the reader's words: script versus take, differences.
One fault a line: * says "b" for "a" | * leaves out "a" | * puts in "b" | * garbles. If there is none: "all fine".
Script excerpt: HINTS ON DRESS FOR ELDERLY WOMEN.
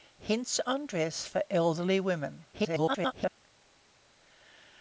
* garbles